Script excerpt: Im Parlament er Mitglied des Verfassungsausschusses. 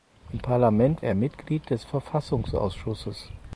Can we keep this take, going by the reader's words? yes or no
yes